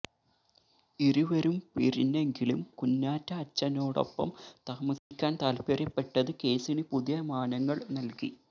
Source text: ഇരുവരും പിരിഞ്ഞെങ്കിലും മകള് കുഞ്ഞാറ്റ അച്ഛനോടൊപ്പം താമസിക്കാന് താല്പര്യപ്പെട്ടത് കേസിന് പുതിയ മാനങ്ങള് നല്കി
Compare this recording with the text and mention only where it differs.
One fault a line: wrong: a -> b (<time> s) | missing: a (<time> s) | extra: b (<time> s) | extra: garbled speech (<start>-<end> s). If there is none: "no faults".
missing: മകള് (2.6 s)